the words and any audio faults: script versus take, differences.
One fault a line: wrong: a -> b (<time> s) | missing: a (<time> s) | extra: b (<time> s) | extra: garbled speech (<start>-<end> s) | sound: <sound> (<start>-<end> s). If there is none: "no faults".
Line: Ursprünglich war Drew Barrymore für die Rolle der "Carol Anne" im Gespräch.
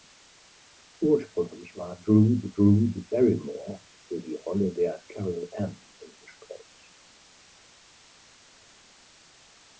extra: Drew (2.6 s)